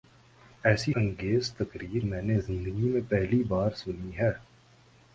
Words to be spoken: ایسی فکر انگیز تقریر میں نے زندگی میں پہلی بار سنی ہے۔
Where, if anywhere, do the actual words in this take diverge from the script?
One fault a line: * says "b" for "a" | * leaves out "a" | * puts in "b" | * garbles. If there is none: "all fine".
* leaves out "فکر"